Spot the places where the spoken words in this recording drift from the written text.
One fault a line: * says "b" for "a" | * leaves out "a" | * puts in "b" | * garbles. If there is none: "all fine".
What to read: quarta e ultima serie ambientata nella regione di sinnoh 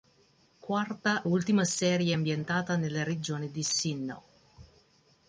* leaves out "e"